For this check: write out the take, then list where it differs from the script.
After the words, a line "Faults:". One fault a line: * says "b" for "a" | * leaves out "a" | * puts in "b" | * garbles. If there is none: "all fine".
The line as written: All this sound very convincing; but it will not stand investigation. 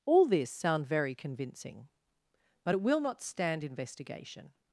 All this sound very convincing; but it will not stand investigation.
Faults:
all fine